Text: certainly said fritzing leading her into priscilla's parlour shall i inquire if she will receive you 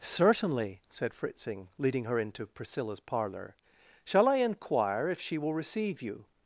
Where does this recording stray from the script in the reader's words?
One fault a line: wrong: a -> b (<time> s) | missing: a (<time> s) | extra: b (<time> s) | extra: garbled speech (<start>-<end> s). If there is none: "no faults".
no faults